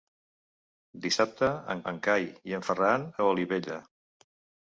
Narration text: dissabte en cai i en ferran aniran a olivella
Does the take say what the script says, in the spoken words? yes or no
no